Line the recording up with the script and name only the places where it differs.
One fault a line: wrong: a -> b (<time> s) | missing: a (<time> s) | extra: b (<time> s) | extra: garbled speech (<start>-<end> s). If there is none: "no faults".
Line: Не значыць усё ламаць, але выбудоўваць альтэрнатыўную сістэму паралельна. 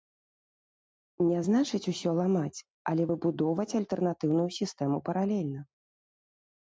no faults